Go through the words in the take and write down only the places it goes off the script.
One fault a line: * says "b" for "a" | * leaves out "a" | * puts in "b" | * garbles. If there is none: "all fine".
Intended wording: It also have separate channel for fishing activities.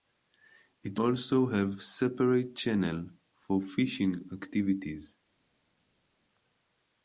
all fine